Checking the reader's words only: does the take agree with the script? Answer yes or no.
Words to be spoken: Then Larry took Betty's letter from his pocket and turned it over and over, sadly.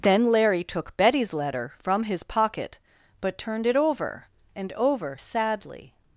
no